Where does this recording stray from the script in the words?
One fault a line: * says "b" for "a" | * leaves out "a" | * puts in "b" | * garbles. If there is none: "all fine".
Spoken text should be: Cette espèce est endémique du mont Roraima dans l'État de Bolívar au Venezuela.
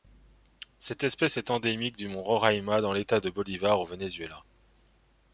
all fine